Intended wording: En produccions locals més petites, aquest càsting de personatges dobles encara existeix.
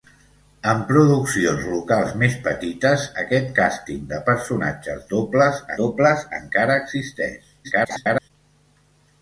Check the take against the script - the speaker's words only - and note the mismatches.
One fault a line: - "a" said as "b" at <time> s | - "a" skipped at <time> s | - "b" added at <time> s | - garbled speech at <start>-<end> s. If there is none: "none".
- "dobles" added at 5.8 s
- garbled speech at 7.6-8.3 s